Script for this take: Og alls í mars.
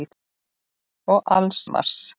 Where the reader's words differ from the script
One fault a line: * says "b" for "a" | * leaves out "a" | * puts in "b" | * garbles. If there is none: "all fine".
all fine